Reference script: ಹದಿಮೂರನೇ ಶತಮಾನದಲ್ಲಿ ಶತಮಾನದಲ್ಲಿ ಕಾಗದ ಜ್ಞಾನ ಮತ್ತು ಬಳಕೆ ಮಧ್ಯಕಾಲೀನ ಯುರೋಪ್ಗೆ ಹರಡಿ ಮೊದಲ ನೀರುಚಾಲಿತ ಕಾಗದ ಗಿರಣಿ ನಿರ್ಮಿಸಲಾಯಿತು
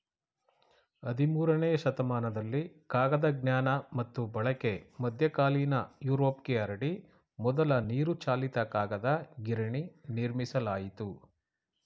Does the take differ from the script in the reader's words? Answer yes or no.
yes